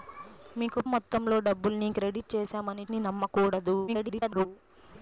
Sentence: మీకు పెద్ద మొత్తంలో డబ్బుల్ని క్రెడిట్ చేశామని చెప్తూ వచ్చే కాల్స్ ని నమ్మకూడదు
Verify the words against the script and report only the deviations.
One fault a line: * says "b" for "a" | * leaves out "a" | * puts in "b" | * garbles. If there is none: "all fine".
* leaves out "పెద్ద"
* leaves out "చెప్తూ వచ్చే కాల్స్"
* garbles